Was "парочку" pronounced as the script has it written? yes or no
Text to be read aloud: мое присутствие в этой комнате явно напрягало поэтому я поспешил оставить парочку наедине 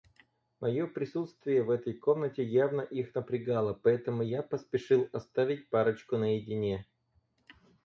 yes